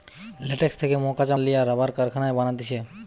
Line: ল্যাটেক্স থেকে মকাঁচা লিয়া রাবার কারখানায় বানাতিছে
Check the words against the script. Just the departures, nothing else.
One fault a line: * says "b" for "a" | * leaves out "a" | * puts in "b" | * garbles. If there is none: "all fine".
all fine